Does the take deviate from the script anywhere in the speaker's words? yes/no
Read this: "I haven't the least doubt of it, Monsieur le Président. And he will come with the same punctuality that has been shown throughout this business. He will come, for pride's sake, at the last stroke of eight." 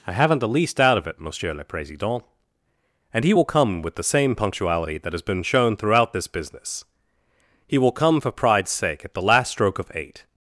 no